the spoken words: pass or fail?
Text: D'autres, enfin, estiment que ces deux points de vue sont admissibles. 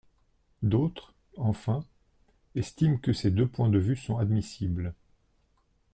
pass